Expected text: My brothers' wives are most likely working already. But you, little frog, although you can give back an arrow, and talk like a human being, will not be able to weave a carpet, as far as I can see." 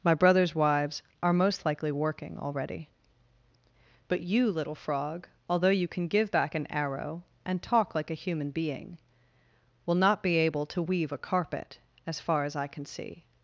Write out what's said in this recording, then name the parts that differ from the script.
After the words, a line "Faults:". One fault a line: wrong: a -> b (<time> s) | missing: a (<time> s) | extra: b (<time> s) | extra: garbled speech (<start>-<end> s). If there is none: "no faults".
My brothers' wives are most likely working already. But you, little frog, although you can give back an arrow, and talk like a human being, will not be able to weave a carpet, as far as I can see."
Faults:
no faults